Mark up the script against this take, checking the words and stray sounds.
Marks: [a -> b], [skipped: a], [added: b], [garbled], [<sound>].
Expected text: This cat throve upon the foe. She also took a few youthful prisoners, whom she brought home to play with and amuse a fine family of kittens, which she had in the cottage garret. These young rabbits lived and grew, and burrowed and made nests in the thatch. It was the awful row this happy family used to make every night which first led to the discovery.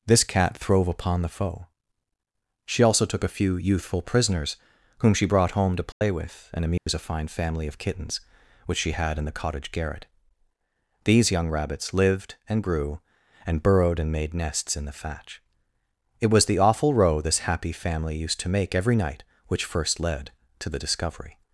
This cat throve upon the foe. She also took a few youthful prisoners, whom she brought home to play [dropout] with and amuse [dropout] a fine family of kittens, which she had in the cottage garret. These young rabbits lived and grew, and burrowed and made nests in the thatch. It was the awful row this happy family used to make every night which first led to the discovery.